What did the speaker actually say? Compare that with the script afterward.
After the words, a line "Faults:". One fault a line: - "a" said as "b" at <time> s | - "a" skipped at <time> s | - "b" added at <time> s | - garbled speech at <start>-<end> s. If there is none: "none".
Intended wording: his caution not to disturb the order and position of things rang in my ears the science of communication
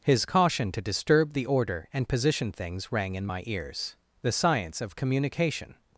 his caution to disturb the order and position things rang in my ears the science of communication
Faults:
- "not" skipped at 0.7 s
- "of" skipped at 2.5 s